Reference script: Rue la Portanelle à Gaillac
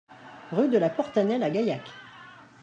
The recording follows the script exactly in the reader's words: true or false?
false